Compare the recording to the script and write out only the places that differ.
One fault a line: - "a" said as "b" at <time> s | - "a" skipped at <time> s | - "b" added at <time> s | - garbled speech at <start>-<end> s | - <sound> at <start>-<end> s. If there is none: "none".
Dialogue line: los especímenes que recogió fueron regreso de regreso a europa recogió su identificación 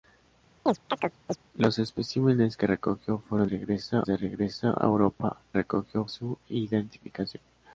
- chirp at 0.7-1.4 s